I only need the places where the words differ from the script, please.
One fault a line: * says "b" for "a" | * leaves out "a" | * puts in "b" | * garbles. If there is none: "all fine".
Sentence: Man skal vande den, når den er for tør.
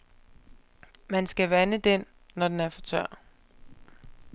all fine